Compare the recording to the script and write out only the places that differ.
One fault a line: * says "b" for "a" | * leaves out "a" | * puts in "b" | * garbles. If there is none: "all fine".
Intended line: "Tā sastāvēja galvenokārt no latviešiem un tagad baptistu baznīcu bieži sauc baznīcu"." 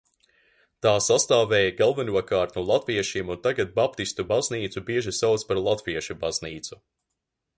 * puts in "par latviešu"